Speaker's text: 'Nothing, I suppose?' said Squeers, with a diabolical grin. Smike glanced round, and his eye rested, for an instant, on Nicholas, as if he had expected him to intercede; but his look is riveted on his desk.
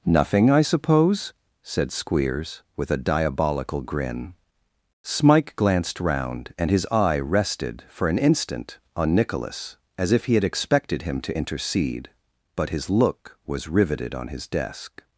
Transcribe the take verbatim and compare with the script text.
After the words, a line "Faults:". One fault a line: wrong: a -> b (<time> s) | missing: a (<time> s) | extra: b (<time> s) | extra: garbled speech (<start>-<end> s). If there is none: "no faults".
'Nothing, I suppose?' said Squeers, with a diabolical grin. Smike glanced round, and his eye rested, for an instant, on Nicholas, as if he had expected him to intercede; but his look was riveted on his desk.
Faults:
wrong: is -> was (13.4 s)